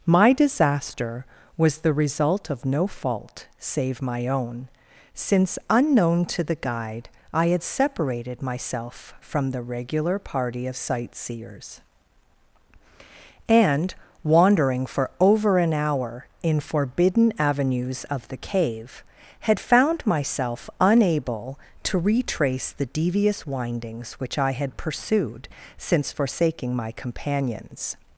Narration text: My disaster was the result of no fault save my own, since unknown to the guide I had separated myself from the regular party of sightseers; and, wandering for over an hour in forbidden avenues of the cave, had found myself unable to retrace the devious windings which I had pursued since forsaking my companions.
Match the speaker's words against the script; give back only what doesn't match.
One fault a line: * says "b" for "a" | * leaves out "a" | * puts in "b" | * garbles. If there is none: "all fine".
all fine